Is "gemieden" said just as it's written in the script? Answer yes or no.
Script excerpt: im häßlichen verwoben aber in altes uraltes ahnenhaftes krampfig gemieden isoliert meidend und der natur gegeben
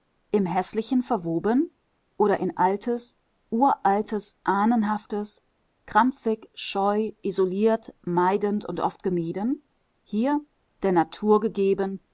no